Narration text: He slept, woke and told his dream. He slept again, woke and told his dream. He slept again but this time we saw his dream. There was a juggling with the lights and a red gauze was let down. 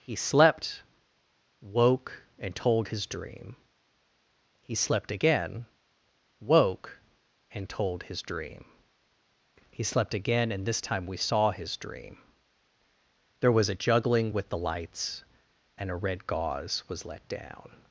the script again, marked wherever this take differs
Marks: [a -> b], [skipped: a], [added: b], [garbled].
He slept, woke and told his dream. He slept again, woke and told his dream. He slept again [but -> and] this time we saw his dream. There was a juggling with the lights and a red gauze was let down.